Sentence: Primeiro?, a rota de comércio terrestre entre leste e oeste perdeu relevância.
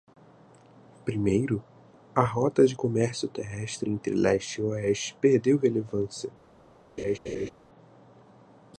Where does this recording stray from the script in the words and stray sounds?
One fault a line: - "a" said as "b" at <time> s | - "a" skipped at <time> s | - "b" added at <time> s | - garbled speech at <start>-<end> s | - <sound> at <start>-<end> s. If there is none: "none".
- laugh at 7.0-7.5 s